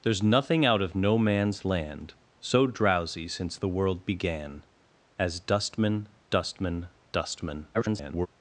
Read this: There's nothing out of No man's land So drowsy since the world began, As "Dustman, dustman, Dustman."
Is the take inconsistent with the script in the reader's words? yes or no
yes